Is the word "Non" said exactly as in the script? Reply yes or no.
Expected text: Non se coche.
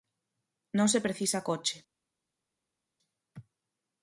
yes